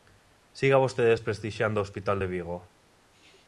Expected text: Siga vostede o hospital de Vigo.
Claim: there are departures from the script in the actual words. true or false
true